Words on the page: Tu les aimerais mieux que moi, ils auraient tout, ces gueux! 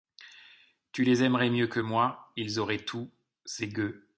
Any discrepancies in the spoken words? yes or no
no